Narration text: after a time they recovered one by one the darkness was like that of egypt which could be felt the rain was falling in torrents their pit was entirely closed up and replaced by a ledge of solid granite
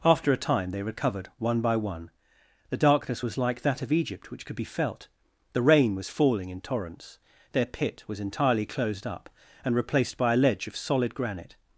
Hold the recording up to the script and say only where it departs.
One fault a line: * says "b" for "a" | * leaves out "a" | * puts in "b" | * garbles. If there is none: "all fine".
all fine